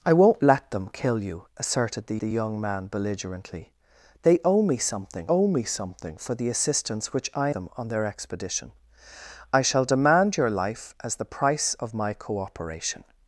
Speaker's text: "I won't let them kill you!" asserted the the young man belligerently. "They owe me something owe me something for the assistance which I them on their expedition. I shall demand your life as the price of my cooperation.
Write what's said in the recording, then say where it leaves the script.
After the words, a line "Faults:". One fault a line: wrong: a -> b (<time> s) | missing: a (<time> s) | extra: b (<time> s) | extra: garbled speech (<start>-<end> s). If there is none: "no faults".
"I won't let them kill you!" asserted the the young man belligerently. "They owe me something owe me something for the assistance which I them on their expedition. I shall demand your life as the price of my cooperation.
Faults:
no faults